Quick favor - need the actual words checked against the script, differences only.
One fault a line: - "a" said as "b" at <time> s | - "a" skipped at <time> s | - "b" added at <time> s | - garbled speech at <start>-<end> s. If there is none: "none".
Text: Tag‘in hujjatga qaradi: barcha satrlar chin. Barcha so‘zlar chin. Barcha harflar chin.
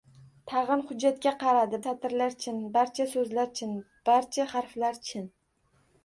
- "barcha" skipped at 1.8 s